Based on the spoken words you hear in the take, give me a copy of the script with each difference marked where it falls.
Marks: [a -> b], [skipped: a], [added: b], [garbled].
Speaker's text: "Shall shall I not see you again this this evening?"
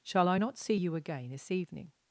"Shall [skipped: shall] I not see you again this [skipped: this] evening?"